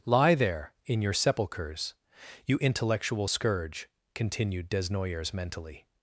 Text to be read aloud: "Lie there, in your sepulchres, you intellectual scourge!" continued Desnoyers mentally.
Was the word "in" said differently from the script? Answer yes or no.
no